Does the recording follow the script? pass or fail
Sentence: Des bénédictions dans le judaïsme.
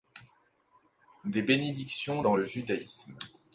pass